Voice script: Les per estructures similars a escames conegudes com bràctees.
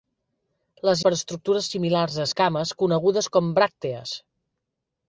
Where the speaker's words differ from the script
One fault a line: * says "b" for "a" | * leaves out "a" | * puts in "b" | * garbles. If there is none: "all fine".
all fine